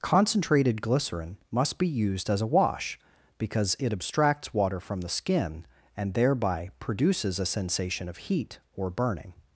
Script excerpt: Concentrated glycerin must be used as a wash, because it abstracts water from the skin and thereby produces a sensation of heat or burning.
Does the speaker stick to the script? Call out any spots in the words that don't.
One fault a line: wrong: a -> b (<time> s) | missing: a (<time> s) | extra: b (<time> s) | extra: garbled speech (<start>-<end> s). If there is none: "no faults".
no faults